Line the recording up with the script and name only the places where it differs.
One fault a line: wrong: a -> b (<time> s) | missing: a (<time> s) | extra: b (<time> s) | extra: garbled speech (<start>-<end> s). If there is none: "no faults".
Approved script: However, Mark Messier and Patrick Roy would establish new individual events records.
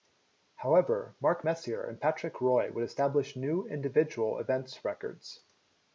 no faults